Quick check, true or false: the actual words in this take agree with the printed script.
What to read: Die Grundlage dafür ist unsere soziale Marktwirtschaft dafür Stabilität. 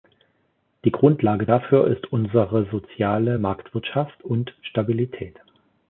false